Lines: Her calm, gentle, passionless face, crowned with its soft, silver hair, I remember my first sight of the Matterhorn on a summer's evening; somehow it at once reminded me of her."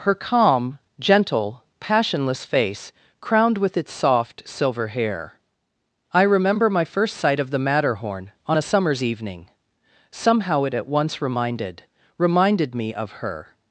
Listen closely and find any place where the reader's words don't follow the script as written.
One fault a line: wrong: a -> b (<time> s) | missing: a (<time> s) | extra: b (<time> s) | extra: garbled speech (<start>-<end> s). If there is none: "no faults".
extra: reminded (12.2 s)